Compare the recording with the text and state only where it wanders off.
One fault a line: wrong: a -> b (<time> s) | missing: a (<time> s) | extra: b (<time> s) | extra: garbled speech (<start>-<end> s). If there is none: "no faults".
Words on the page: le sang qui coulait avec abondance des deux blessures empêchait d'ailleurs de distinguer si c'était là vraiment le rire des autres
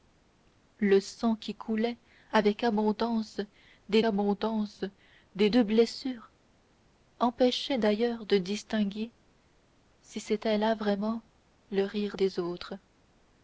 extra: abondance des (4.0 s)